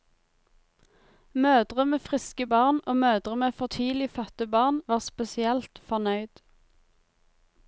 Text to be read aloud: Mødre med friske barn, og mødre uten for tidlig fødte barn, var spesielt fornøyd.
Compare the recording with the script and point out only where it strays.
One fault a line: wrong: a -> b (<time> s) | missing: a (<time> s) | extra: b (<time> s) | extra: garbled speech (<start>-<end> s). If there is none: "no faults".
wrong: uten -> med (3.4 s)